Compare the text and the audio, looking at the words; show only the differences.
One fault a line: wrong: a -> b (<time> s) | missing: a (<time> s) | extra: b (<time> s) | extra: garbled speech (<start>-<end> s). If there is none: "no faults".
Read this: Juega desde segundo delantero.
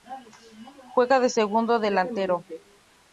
wrong: desde -> de (1.2 s)